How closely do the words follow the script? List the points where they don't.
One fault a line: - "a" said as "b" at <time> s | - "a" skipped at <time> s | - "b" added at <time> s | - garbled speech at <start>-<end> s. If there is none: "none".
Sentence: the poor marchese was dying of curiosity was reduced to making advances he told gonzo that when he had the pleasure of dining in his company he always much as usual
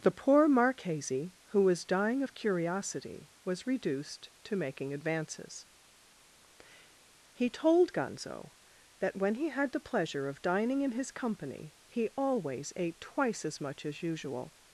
- "who" added at 1.5 s
- "ate twice as" added at 12.8 s